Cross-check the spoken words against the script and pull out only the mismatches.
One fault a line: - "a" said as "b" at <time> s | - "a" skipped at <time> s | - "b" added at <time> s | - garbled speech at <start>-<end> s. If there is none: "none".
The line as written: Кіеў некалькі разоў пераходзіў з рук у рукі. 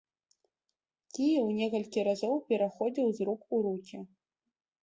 none